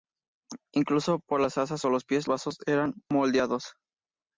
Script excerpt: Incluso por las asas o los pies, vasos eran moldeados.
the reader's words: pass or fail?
pass